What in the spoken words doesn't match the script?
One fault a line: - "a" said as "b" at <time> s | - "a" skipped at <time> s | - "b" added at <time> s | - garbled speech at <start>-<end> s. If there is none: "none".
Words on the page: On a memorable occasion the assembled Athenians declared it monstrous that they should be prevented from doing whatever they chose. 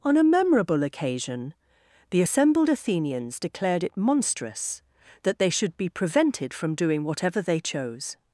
none